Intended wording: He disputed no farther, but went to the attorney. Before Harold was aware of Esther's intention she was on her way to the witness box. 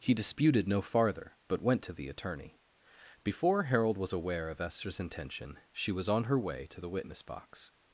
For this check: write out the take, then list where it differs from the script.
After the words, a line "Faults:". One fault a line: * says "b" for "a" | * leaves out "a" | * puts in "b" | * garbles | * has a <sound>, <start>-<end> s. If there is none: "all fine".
He disputed no farther, but went to the attorney. Before Harold was aware of Esther's intention she was on her way to the witness box.
Faults:
all fine